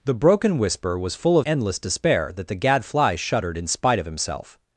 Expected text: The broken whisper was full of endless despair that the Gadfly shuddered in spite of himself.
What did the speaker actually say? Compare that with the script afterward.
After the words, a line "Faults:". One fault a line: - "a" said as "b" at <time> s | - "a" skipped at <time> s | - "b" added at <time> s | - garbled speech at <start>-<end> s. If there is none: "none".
The broken whisper was full of endless despair that the Gadfly shuddered in spite of himself.
Faults:
none